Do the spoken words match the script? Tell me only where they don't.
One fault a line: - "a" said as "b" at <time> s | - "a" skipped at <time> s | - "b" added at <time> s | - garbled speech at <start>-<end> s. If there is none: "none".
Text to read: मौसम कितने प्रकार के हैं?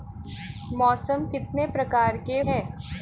none